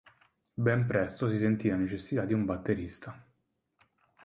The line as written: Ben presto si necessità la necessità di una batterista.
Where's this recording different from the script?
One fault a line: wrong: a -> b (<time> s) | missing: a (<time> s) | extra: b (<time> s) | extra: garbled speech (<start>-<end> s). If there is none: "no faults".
wrong: necessità -> sentì (1.4 s)
wrong: una -> un (2.3 s)